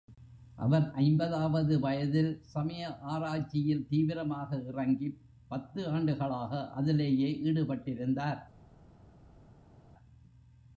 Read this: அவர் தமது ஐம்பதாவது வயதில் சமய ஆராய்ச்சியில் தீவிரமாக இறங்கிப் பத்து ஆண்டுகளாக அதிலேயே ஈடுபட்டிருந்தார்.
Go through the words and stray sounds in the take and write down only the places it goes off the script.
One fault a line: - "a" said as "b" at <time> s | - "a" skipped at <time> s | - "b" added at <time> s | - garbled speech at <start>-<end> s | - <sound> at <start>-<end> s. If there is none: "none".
- "தமது" skipped at 0.9 s